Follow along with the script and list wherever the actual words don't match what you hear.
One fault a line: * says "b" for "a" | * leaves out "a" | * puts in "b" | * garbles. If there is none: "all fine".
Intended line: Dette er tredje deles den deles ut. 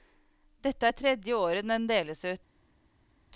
* says "året" for "deles"